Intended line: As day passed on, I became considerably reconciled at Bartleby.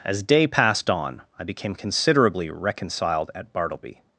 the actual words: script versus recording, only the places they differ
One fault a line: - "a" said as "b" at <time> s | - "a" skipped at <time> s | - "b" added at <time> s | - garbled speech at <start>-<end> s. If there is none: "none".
none